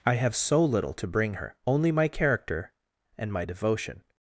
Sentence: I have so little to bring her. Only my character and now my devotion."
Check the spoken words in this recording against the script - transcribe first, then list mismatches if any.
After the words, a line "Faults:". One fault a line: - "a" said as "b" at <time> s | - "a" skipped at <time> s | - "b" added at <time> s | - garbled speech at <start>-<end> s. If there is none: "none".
I have so little to bring her. Only my character and my devotion."
Faults:
- "now" skipped at 3.3 s